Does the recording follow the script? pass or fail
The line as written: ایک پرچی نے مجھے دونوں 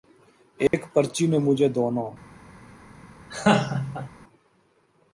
pass